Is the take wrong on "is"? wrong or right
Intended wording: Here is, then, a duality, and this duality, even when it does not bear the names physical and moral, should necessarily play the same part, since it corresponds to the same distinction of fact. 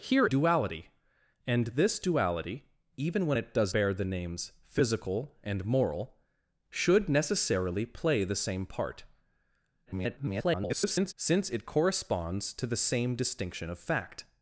wrong